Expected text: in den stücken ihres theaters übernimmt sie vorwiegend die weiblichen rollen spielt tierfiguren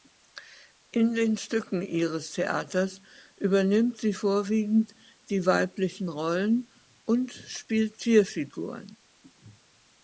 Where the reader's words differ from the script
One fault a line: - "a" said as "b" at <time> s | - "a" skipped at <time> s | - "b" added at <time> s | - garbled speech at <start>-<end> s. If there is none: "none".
- "und" added at 7.1 s